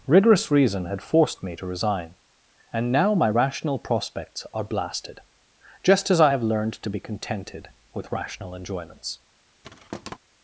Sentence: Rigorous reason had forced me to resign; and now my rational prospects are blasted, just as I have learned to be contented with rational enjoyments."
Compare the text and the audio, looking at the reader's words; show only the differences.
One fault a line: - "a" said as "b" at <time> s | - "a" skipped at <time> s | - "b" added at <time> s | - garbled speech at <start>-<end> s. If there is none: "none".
none